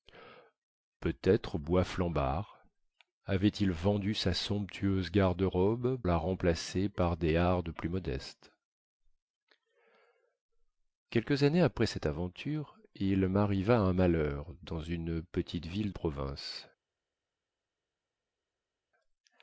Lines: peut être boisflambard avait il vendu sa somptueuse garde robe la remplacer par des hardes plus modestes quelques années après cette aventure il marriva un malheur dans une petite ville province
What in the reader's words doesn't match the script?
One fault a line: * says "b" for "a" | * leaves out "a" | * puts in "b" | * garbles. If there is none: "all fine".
all fine